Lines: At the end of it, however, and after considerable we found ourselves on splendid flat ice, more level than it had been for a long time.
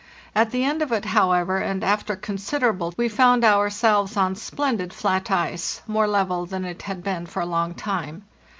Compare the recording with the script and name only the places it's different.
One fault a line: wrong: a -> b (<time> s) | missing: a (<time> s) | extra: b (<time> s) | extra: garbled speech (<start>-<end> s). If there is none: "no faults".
no faults